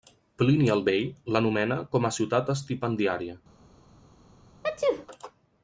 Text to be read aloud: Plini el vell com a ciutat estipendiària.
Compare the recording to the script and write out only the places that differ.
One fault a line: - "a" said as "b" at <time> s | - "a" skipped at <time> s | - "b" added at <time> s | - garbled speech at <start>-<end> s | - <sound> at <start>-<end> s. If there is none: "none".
- "l'anomena" added at 1.4 s
- sneeze at 4.6-5.1 s